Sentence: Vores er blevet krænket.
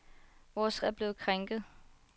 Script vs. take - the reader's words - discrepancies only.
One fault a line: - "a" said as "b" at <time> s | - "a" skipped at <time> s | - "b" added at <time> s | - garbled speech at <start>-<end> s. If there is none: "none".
none